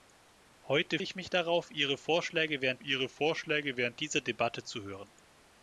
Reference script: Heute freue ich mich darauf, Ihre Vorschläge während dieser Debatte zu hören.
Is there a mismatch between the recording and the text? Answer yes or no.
yes